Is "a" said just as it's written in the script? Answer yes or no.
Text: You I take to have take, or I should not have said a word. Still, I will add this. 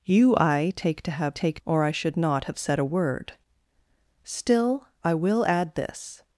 yes